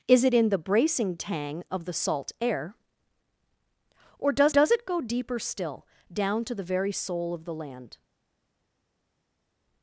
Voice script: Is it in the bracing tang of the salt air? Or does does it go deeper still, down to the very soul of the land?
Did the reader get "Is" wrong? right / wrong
right